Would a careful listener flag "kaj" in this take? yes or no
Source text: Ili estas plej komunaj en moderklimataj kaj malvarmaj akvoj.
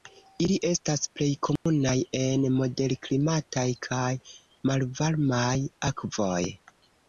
no